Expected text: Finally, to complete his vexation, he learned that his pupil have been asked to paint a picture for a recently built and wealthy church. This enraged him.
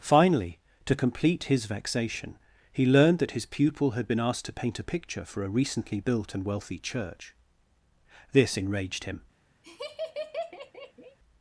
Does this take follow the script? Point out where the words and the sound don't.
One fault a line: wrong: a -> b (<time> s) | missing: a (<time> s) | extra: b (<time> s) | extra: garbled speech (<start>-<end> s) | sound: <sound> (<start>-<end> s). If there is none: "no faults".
wrong: have -> had (3.9 s)
sound: laugh (9.6-11.2 s)